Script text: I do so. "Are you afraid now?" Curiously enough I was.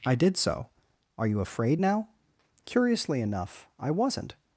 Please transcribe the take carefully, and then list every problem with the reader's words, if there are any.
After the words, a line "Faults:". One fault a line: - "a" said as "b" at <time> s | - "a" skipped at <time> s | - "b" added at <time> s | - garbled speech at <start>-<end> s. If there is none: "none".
I did so. "Are you afraid now?" Curiously enough I wasn't.
Faults:
- "do" said as "did" at 0.1 s
- "was" said as "wasn't" at 3.9 s